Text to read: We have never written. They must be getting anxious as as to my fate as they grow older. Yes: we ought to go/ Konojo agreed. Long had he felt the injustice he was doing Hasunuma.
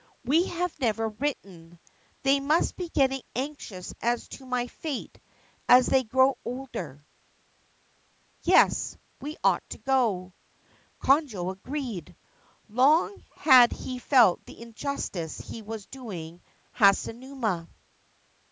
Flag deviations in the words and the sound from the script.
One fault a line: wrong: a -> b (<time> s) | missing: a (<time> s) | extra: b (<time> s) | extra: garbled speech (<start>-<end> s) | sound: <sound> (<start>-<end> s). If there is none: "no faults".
missing: as (4.3 s)